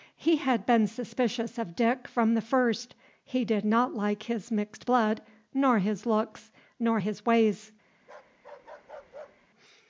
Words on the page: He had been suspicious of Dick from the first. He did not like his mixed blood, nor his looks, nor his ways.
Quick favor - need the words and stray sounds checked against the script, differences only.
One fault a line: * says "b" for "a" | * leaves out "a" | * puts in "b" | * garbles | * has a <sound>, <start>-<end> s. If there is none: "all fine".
* has a bark, 8.0-9.5 s